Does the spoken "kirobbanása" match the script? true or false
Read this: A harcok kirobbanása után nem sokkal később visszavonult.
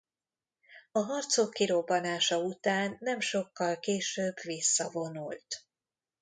true